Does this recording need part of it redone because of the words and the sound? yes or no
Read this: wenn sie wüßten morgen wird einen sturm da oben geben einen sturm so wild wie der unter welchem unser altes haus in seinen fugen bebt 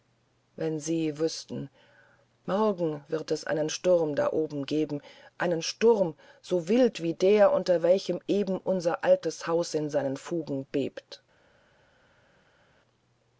yes